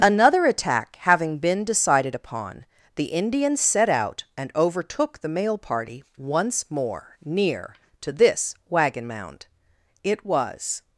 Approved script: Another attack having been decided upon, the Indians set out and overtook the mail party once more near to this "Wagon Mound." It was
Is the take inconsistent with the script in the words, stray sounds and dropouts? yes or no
no